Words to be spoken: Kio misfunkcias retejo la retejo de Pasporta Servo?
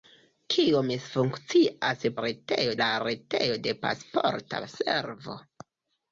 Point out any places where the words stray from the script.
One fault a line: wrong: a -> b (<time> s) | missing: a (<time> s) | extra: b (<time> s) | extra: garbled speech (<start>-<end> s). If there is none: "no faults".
no faults